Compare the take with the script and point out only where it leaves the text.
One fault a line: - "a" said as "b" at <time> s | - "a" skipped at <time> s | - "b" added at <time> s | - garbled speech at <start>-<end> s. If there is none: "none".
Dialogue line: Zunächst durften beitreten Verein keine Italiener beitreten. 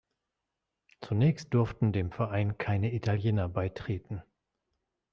- "beitreten" said as "dem" at 1.9 s